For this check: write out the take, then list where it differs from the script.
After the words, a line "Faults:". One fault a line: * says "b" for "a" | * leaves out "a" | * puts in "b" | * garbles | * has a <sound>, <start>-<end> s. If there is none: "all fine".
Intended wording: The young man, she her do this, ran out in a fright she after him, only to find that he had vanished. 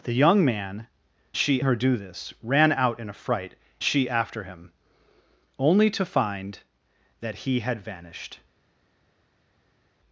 The young man, she her do this, ran out in a fright she after him, only to find that he had vanished.
Faults:
all fine